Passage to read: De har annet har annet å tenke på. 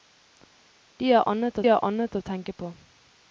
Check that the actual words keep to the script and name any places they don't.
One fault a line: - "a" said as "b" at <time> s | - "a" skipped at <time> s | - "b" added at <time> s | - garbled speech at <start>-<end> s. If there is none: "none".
none